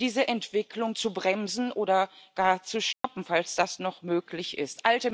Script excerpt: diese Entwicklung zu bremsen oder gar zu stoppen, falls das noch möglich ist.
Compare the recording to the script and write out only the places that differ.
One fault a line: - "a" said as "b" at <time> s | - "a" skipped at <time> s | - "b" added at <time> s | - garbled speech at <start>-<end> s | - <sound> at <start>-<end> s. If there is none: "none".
- dropout at 2.9-3.0 s